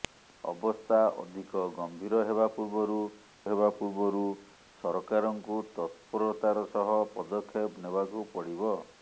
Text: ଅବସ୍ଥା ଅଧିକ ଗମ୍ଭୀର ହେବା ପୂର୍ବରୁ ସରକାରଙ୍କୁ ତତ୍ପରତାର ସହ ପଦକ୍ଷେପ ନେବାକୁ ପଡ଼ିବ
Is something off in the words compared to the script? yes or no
yes